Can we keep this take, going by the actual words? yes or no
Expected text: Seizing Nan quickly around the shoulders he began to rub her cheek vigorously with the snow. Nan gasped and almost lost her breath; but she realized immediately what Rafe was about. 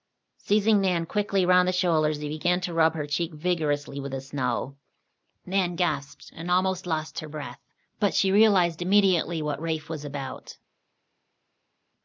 yes